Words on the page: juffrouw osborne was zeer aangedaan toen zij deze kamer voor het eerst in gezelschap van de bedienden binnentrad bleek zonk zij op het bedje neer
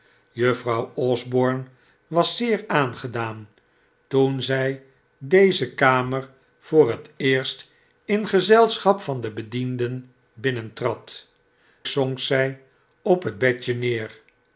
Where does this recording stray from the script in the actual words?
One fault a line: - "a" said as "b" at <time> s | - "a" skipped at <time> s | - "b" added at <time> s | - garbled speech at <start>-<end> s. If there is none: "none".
- "bleek" skipped at 11.3 s